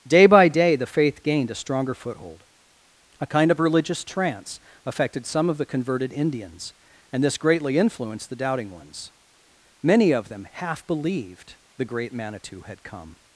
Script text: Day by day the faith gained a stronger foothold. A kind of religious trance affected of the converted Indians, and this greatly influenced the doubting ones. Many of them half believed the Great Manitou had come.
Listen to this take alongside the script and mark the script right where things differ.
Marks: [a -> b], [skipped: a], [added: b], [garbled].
Day by day the faith gained a stronger foothold. A kind of religious trance affected [added: some] of the converted Indians, and this greatly influenced the doubting ones. Many of them half believed the Great Manitou had come.